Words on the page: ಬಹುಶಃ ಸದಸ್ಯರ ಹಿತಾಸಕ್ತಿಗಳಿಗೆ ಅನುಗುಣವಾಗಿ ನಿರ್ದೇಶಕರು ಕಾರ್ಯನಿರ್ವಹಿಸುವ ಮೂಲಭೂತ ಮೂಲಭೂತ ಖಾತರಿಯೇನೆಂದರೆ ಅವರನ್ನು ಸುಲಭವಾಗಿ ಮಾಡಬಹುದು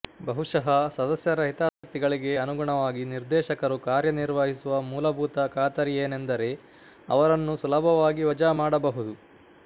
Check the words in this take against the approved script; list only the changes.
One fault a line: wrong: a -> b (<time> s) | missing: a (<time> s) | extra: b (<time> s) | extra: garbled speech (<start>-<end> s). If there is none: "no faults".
missing: ಮೂಲಭೂತ (5.5 s)
extra: ವಜಾ (8.3 s)